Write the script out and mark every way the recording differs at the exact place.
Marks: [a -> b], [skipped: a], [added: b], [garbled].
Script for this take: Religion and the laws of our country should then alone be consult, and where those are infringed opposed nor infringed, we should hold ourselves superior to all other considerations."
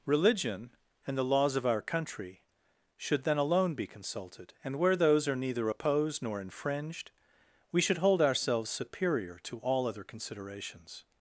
Religion and the laws of our country should then alone be [consult, -> consulted] and where those are [infringed -> neither] opposed nor infringed, we should hold ourselves superior to all other considerations."